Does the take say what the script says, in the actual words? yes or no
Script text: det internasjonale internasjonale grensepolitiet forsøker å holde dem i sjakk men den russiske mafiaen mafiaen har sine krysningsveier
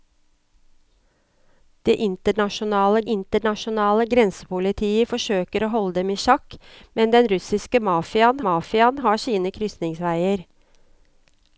yes